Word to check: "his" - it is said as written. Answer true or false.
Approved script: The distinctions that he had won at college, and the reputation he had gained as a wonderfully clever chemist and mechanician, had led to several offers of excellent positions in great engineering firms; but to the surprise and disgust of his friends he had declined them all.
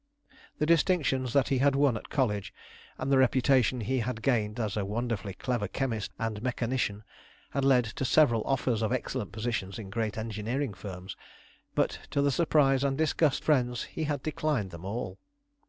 false